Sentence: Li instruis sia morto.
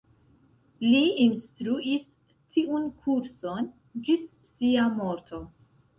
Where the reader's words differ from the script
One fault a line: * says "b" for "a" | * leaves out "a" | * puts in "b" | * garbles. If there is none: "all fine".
* puts in "tiun kurson ĝis"